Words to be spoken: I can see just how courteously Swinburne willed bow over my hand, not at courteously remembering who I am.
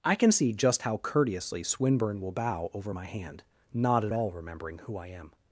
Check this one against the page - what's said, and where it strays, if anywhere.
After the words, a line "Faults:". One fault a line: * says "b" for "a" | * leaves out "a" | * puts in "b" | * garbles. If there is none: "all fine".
I can see just how courteously Swinburne will bow over my hand, not at all remembering who I am.
Faults:
* says "will" for "willed"
* says "all" for "courteously"